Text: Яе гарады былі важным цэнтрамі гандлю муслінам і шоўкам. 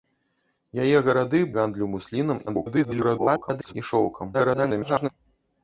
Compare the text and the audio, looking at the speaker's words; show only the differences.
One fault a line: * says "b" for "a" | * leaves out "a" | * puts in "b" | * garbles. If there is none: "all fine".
* leaves out "былі важным цэнтрамі"
* garbles
* garbles